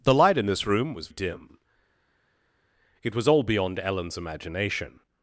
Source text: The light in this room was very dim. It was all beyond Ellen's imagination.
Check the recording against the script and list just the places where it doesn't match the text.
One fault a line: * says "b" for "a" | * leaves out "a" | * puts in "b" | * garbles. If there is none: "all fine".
* leaves out "very"